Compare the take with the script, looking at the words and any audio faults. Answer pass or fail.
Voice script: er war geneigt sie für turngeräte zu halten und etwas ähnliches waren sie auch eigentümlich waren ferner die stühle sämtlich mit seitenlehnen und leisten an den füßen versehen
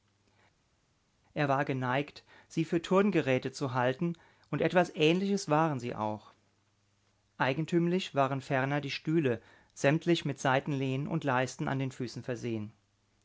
pass